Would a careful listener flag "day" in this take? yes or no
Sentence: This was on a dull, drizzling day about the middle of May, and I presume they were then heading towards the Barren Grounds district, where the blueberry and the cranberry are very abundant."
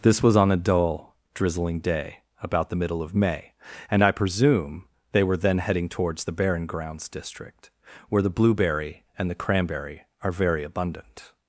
no